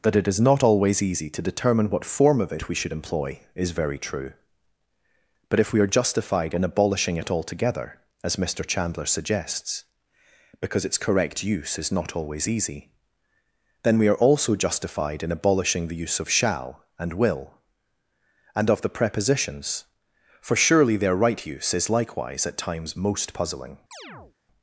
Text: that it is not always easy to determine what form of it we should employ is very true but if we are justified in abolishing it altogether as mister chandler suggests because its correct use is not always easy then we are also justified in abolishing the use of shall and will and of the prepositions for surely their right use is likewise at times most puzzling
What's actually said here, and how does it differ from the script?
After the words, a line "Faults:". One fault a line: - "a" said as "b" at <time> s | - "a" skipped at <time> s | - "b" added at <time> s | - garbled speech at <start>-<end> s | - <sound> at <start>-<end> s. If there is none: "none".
that it is not always easy to determine what form of it we should employ is very true but if we are justified in abolishing it altogether as mister chandler suggests because its correct use is not always easy then we are also justified in abolishing the use of shall and will and of the prepositions for surely their right use is likewise at times most puzzling
Faults:
- chirp at 23.9-24.4 s